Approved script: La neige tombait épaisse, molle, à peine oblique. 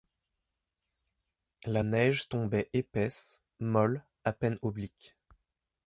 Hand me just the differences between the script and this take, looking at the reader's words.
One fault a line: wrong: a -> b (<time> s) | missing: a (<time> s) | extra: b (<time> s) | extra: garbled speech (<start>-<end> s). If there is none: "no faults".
no faults